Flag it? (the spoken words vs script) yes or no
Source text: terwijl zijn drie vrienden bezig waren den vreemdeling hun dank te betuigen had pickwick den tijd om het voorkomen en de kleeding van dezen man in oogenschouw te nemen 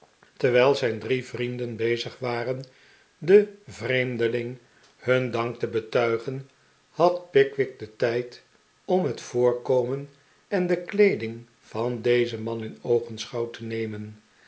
no